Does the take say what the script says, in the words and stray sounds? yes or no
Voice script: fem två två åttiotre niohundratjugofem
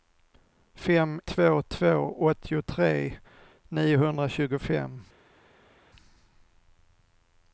yes